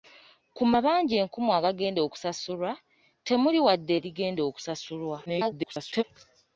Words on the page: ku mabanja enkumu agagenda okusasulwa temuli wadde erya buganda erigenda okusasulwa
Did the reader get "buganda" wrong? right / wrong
wrong